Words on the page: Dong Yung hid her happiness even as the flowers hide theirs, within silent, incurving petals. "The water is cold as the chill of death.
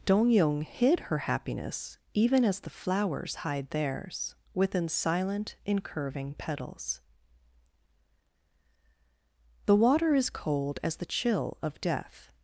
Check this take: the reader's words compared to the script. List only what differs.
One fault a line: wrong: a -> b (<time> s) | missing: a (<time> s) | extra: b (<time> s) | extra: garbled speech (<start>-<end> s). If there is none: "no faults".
no faults